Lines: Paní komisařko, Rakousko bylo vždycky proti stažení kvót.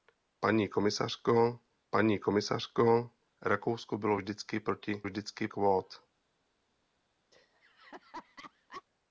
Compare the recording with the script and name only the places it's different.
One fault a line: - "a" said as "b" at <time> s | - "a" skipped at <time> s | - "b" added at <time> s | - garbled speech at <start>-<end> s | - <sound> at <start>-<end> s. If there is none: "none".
- "paní komisařko" added at 1.9 s
- "stažení" said as "vždycky" at 5.0 s
- laugh at 7.3-8.8 s